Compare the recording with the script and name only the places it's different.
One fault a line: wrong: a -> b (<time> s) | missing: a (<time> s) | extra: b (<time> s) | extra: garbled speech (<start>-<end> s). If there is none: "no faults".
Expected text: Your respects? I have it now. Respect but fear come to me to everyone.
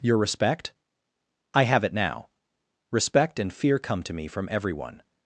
wrong: respects -> respect (0.2 s)
wrong: but -> and (3.4 s)
wrong: to -> from (4.3 s)